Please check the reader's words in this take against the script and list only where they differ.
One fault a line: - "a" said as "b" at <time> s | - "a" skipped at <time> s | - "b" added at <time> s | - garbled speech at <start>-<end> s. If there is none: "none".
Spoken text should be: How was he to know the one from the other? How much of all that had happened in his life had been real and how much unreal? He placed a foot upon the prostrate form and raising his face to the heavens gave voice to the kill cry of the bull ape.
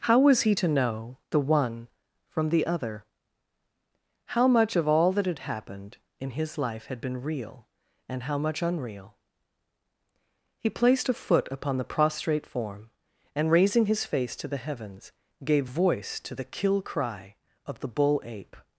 none